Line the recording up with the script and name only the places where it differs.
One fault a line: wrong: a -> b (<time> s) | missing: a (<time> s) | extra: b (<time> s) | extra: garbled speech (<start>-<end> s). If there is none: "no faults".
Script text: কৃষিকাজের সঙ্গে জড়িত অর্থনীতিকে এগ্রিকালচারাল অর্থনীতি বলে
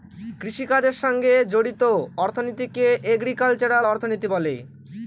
no faults